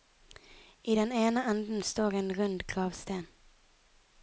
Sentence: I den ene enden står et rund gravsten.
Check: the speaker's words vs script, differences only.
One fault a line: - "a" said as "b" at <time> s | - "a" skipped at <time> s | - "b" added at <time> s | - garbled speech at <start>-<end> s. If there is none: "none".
- "et" said as "en" at 2.1 s